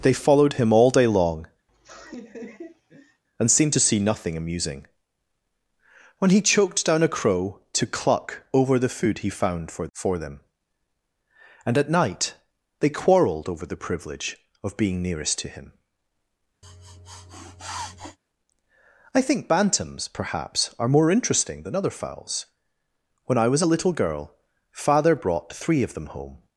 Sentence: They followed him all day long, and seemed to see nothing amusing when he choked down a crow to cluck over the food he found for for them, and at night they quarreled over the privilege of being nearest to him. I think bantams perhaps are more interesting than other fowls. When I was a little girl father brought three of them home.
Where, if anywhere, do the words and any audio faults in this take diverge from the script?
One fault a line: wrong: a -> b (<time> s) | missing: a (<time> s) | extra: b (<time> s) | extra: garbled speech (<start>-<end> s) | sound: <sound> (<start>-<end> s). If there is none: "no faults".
sound: laugh (1.7-3.2 s)
sound: sniff (16.6-18.2 s)